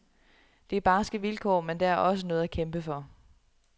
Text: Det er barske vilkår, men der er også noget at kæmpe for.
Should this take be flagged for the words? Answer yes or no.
no